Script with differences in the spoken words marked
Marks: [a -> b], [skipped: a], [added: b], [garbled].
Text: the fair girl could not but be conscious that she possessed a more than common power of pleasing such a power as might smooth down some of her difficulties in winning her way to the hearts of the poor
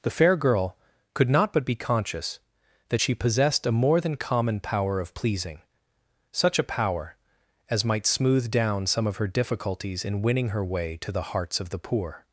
the fair girl could not but be conscious that she possessed a more than common power of pleasing such a power as might smooth down some of her difficulties in winning her way to the hearts of the poor